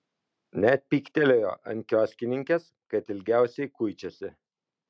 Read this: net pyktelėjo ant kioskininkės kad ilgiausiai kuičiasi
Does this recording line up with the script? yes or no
yes